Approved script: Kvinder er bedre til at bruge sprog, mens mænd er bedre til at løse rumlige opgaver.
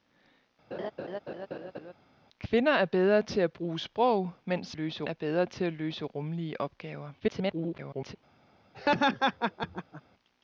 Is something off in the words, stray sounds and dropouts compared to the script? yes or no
yes